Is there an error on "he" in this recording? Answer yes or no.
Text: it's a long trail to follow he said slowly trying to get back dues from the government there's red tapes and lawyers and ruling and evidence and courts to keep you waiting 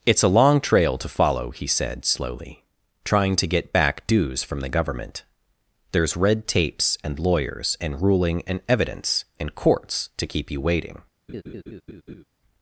no